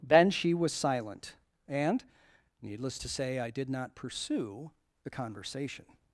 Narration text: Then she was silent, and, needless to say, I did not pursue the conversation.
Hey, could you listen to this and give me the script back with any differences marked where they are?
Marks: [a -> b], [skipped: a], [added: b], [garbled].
Then she was silent, and, needless to say, I did not pursue the conversation.